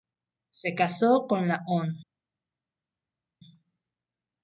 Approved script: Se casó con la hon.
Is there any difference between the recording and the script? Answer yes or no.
no